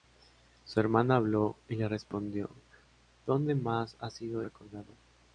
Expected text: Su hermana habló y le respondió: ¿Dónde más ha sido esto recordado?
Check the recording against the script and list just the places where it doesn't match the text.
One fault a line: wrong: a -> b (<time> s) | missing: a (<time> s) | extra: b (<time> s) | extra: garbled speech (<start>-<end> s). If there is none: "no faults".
missing: esto (4.4 s)